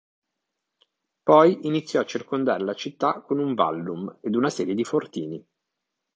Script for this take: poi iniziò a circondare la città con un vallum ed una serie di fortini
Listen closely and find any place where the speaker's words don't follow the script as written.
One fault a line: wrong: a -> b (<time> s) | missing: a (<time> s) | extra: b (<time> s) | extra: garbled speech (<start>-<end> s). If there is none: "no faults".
no faults